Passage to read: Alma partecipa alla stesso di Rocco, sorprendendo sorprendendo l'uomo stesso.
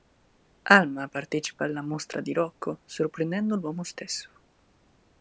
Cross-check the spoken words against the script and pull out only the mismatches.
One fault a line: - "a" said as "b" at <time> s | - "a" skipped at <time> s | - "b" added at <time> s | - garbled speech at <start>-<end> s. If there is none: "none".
- "stesso" said as "mostra" at 1.8 s
- "sorprendendo" skipped at 3.5 s